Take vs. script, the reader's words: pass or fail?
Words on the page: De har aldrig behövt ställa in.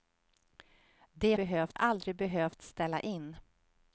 fail